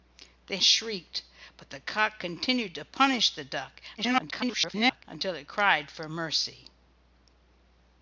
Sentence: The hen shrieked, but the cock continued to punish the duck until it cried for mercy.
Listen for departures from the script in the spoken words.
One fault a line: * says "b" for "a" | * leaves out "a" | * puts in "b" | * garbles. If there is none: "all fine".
* leaves out "hen"
* garbles